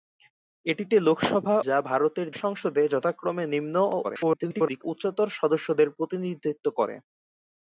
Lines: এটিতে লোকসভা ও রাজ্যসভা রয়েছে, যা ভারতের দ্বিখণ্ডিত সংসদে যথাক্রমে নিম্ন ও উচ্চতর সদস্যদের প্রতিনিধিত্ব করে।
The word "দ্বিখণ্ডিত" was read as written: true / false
false